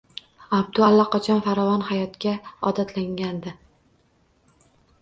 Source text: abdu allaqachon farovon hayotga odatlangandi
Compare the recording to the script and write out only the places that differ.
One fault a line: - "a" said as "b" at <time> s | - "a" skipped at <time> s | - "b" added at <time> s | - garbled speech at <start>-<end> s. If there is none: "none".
none